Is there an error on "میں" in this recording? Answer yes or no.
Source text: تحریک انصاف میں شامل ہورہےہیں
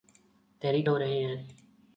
yes